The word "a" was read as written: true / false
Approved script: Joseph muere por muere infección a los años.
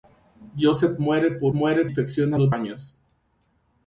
true